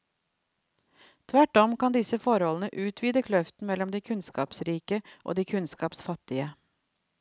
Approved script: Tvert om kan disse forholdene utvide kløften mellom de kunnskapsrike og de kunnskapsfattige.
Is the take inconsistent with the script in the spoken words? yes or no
no